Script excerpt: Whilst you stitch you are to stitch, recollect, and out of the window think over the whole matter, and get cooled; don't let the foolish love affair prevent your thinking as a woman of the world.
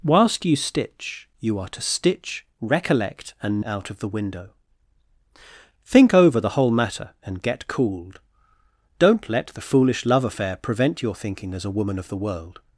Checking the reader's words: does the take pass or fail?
pass